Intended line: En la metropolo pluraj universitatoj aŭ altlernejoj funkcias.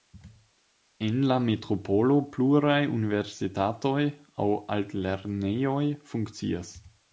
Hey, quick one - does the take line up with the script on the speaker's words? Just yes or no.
yes